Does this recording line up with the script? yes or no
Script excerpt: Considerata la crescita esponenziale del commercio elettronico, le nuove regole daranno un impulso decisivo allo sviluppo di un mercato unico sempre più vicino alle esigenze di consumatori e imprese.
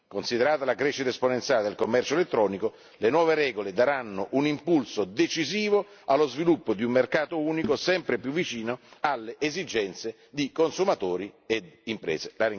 yes